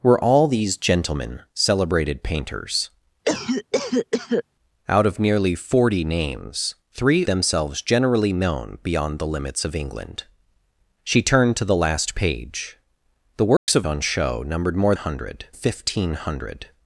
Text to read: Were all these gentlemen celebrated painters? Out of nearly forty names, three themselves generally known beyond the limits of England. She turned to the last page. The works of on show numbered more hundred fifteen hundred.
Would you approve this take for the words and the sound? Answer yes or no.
no